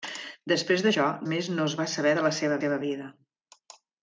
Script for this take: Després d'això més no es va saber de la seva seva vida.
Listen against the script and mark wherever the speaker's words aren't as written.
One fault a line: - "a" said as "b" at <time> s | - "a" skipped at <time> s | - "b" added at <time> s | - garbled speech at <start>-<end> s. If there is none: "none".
none